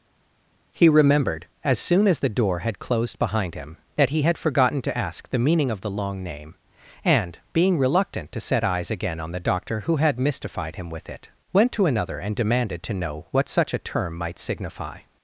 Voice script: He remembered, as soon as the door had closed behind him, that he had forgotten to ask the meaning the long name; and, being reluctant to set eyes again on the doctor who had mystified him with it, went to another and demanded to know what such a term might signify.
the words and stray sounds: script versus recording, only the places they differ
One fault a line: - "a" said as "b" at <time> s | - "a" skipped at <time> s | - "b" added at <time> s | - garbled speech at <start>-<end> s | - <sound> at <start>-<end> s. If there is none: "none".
- "of" added at 5.7 s